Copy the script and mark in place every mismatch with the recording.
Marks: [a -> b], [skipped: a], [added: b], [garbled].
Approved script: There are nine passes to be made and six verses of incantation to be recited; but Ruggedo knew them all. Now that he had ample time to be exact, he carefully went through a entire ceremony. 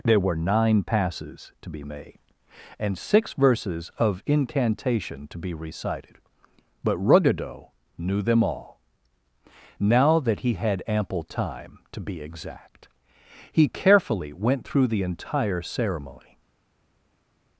There [are -> were] nine passes to be made and six verses of incantation to be recited; but Ruggedo knew them all. Now that he had ample time to be exact, he carefully went through [a -> the] entire ceremony.